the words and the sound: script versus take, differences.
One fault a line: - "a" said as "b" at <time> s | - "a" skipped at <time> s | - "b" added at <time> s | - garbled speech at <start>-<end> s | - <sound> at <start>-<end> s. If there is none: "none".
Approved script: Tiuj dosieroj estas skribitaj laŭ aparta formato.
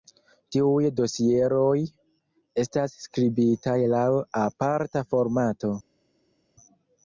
none